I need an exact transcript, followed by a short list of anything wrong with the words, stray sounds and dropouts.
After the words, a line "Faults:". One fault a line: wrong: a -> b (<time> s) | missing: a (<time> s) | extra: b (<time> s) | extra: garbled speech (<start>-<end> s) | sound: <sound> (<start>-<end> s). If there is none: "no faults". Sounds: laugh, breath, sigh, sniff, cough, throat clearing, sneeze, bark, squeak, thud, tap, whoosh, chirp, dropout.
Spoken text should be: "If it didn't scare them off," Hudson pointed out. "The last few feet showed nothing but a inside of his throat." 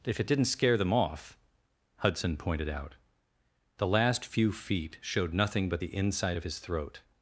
"If it didn't scare them off," Hudson pointed out. "The last few feet showed nothing but the inside of his throat."
Faults:
wrong: a -> the (5.8 s)